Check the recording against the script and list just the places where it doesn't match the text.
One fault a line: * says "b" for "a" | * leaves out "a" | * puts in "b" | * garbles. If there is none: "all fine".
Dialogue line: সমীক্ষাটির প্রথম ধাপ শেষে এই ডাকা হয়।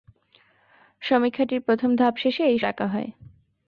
all fine